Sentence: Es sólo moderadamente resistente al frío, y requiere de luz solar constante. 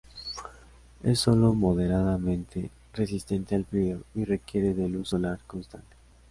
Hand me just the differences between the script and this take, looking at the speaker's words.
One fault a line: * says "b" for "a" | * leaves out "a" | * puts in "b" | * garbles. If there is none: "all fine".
all fine